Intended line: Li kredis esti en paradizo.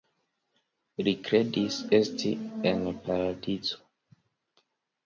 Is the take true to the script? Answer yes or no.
yes